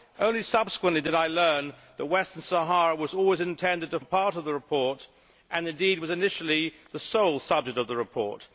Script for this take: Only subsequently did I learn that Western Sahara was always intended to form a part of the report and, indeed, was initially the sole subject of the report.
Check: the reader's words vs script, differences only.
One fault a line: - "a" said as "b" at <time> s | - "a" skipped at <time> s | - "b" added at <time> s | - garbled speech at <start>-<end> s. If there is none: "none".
- "form" skipped at 4.0 s